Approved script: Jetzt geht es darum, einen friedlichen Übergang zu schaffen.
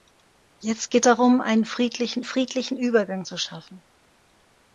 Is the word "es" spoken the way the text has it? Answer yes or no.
no